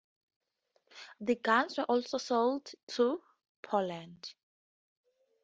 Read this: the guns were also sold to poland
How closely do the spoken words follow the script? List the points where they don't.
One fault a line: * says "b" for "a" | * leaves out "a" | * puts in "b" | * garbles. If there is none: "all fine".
all fine